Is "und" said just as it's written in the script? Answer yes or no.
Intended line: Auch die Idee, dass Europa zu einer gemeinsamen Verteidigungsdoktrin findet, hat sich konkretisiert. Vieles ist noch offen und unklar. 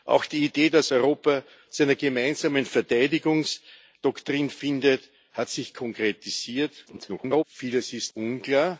no